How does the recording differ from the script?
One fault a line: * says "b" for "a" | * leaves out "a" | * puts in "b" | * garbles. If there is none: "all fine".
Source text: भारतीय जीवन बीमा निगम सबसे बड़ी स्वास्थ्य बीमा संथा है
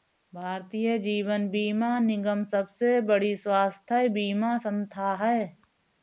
all fine